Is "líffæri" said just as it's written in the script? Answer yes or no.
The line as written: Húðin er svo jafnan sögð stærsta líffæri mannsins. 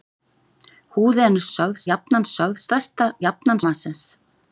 no